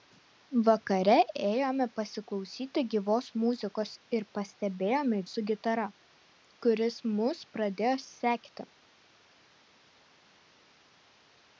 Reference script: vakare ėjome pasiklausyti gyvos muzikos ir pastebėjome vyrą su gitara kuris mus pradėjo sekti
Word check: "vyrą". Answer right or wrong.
wrong